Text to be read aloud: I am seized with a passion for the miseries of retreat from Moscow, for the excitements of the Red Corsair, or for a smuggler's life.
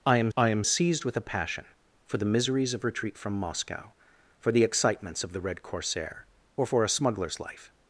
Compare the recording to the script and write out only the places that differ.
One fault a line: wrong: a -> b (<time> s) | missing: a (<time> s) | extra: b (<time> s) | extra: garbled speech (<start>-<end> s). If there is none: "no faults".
extra: I am (0.4 s)